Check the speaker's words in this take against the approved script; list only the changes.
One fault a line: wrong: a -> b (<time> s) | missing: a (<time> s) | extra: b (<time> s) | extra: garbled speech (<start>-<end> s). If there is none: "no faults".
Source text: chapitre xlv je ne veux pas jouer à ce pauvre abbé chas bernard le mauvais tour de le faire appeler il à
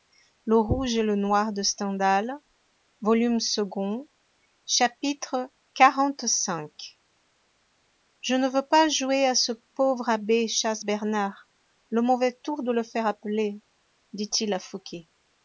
extra: dit (14.1 s)